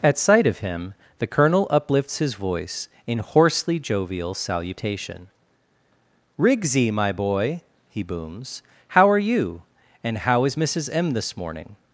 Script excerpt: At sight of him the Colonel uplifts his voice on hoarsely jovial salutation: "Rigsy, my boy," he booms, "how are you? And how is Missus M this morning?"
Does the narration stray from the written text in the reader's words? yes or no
yes